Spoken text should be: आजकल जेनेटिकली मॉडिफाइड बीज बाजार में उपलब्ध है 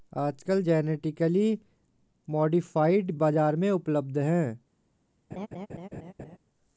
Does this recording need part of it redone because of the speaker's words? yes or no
yes